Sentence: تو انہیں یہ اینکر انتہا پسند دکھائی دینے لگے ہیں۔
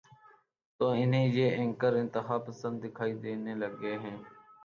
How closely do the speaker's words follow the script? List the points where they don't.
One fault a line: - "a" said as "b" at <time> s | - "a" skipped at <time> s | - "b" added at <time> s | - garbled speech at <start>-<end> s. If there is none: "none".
none